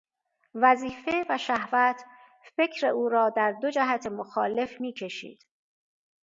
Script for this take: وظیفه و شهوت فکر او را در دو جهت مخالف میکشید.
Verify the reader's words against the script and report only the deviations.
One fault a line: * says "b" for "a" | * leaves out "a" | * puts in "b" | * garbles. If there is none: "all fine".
all fine